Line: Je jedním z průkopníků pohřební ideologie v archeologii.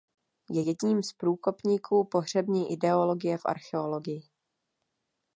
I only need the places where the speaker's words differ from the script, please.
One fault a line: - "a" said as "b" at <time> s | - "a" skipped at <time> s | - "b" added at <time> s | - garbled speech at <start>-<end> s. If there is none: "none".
none